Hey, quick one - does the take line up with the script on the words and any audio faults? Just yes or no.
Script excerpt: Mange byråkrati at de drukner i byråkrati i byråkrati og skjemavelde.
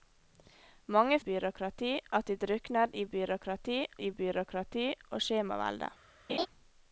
no